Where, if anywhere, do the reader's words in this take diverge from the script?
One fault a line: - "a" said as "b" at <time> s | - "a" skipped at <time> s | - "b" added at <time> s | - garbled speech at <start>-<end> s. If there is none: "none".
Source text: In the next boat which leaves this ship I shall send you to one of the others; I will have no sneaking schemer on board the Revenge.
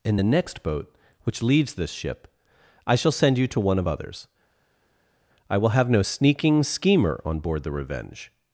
- "the" skipped at 3.9 s